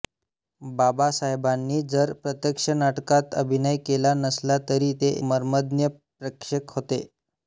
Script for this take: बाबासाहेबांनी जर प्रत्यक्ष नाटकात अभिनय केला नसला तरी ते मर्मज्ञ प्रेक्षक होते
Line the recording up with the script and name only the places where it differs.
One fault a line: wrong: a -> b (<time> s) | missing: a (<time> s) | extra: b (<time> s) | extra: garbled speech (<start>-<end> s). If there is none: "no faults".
no faults